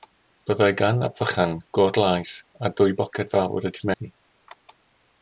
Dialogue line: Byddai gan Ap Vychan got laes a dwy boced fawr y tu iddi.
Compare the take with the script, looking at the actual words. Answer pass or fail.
pass